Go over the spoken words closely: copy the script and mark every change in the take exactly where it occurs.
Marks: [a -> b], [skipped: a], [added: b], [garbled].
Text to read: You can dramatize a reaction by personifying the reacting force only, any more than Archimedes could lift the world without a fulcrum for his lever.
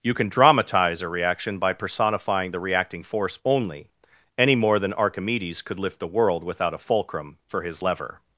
You can dramatize a reaction by personifying the reacting force only, any more than Archimedes could lift the world without a fulcrum for his lever.